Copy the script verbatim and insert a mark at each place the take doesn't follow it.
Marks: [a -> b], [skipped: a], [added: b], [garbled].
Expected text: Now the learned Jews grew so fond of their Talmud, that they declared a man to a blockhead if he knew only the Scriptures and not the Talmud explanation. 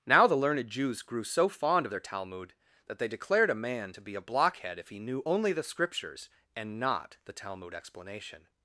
Now the learned Jews grew so fond of their Talmud, that they declared a man to [added: be] a blockhead if he knew only the Scriptures and not the Talmud explanation.